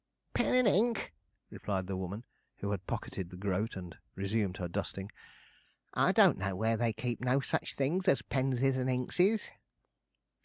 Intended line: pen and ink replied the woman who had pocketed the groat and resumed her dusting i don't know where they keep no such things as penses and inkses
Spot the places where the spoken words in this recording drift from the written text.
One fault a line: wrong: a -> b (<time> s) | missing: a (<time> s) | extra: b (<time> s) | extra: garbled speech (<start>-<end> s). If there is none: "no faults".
no faults